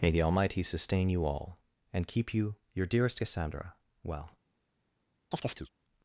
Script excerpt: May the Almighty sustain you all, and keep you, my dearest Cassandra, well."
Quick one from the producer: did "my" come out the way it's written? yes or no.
no